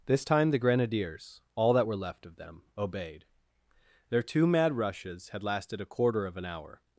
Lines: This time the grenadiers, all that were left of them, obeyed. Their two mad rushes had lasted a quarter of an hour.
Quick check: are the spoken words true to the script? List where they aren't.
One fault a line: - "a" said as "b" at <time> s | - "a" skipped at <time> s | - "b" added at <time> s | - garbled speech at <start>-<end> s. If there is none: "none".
none